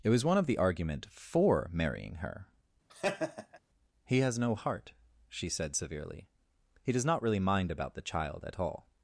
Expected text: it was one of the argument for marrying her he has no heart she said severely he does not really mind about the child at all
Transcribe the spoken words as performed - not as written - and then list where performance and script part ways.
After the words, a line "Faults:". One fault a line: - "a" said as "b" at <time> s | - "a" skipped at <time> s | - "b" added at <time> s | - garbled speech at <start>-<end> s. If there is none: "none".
it was one of the argument for marrying her he has no heart she said severely he does not really mind about the child at all
Faults:
none